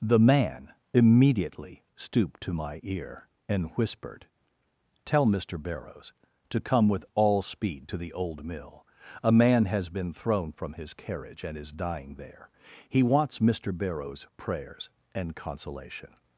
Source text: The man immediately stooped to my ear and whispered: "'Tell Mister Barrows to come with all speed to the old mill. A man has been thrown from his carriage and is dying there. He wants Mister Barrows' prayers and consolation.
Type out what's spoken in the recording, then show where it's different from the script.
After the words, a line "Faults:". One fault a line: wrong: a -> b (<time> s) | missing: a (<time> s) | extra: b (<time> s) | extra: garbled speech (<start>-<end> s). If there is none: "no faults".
The man immediately stooped to my ear and whispered: "'Tell Mister Barrows to come with all speed to the old mill. A man has been thrown from his carriage and is dying there. He wants Mister Barrows' prayers and consolation.
Faults:
no faults